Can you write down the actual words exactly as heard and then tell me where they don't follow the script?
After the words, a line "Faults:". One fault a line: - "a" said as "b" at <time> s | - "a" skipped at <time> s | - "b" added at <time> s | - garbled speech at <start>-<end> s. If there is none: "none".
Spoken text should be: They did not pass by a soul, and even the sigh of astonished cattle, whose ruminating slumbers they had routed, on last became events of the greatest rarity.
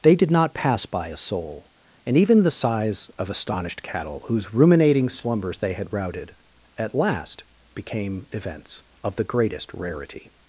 They did not pass by a soul, and even the sighs of astonished cattle, whose ruminating slumbers they had routed, at last became events of the greatest rarity.
Faults:
- "sigh" said as "sighs" at 2.5 s
- "on" said as "at" at 6.8 s